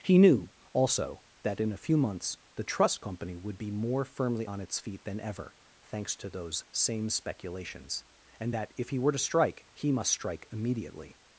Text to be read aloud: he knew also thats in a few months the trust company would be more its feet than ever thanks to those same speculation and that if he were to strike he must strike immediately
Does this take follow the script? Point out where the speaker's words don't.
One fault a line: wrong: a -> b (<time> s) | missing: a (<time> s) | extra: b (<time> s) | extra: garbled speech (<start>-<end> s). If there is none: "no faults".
wrong: thats -> that (1.4 s)
extra: firmly on (4.0 s)
wrong: speculation -> speculations (7.1 s)